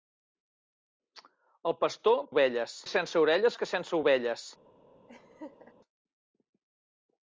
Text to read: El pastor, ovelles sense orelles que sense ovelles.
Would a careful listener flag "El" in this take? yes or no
no